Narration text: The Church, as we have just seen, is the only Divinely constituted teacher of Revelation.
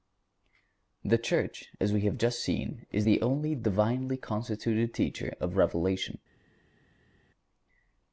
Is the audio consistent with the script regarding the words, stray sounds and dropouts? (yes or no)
yes